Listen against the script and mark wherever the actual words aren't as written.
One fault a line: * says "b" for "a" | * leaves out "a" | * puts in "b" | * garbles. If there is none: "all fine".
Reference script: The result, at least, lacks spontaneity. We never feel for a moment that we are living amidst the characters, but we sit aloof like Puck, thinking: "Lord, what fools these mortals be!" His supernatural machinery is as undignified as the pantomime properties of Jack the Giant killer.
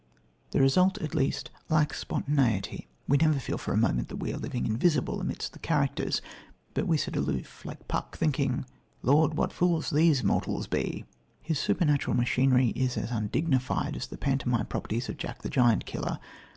* puts in "invisible"